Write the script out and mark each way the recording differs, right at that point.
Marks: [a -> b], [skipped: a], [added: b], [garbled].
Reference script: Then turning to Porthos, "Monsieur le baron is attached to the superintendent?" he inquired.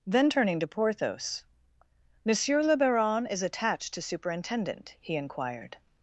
Then turning to Porthos, "Monsieur le baron is attached to [skipped: the] superintendent?" he inquired.